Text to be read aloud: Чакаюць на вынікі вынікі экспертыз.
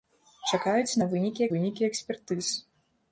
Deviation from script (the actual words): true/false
false